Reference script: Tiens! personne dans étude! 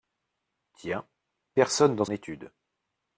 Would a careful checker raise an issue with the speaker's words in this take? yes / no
no